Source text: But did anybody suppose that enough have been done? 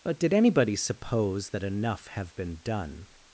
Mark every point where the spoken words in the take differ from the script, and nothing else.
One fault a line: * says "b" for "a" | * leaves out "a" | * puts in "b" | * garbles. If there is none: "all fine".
all fine